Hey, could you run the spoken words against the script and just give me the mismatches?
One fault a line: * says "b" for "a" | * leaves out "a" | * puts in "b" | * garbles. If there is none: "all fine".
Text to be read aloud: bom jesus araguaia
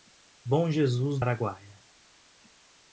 all fine